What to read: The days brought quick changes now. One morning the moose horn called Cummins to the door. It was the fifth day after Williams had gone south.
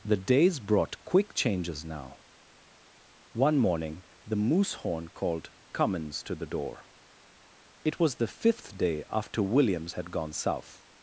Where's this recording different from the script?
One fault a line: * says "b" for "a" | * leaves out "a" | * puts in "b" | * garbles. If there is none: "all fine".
all fine